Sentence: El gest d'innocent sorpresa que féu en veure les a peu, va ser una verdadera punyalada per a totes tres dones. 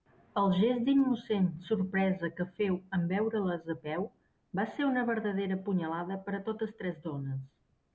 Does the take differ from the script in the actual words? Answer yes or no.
no